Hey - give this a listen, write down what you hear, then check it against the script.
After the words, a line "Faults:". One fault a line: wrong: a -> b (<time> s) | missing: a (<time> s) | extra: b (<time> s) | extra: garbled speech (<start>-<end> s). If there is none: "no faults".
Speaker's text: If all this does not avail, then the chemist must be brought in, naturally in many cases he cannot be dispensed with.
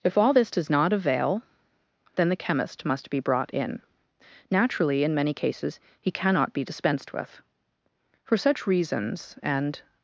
If all this does not avail, then the chemist must be brought in, naturally in many cases he cannot be dispensed with. For such reasons and
Faults:
extra: For such reasons and (8.3 s)